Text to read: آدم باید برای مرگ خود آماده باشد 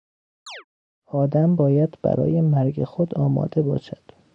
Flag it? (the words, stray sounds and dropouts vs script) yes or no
yes